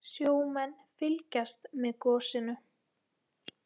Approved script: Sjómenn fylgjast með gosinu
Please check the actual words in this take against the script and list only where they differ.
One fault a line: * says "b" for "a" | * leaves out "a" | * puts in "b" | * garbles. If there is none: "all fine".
all fine